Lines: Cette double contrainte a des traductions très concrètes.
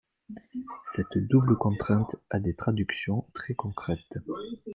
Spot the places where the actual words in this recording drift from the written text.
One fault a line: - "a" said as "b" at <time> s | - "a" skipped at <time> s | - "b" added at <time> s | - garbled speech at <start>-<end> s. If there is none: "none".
none